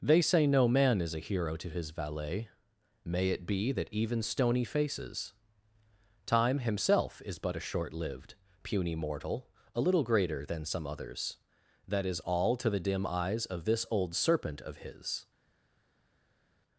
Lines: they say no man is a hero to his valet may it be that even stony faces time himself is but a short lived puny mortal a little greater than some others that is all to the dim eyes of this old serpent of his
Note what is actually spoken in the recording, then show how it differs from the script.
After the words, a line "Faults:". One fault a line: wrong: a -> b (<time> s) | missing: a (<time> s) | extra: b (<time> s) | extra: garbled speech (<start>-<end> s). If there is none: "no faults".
they say no man is a hero to his valet may it be that even stony faces time himself is but a short lived puny mortal a little greater than some others that is all to the dim eyes of this old serpent of his
Faults:
no faults